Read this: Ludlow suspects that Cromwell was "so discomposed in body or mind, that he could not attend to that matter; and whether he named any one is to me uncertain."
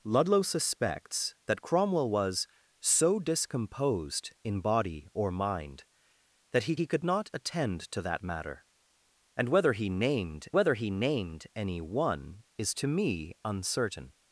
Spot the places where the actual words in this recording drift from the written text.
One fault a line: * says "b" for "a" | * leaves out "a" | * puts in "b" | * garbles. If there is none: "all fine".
* puts in "he"
* puts in "whether he named"